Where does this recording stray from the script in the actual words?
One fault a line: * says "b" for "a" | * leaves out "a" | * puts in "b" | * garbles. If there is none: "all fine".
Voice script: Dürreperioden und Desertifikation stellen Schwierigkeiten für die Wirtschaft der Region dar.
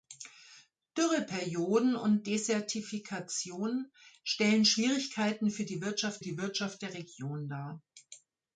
* puts in "die Wirtschaft"